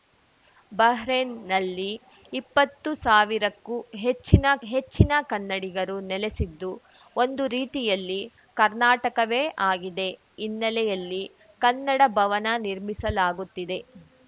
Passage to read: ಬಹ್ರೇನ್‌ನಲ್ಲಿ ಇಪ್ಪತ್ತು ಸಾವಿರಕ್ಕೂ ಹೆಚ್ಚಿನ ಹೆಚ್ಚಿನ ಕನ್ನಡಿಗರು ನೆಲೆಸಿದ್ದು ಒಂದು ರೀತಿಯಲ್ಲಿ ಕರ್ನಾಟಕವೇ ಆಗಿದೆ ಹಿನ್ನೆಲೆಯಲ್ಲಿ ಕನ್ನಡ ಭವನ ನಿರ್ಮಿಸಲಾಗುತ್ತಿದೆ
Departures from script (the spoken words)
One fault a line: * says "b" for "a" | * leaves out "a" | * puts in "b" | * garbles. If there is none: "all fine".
all fine